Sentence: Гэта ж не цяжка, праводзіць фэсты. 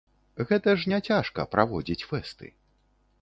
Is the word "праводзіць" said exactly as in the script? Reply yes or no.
yes